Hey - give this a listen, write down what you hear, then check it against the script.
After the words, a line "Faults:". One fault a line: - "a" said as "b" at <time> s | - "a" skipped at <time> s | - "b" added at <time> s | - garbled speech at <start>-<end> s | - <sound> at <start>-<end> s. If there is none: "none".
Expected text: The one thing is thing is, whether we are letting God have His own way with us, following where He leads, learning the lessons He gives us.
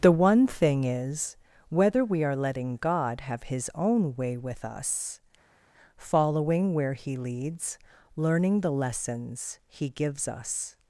The one thing is, whether we are letting God have His own way with us, following where He leads, learning the lessons He gives us.
Faults:
- "thing is" skipped at 1.4 s